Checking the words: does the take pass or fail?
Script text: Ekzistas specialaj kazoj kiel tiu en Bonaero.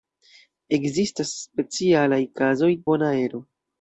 fail